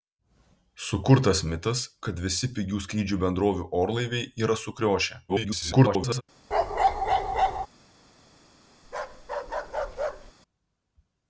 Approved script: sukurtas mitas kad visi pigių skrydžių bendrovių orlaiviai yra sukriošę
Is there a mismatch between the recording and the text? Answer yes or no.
yes